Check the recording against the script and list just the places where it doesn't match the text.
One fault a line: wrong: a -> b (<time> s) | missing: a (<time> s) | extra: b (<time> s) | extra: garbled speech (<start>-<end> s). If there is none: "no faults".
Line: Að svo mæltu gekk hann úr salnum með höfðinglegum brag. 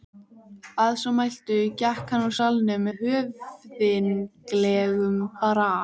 no faults